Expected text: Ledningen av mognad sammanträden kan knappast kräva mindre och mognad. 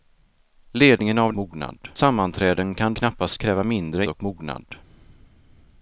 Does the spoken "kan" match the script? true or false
true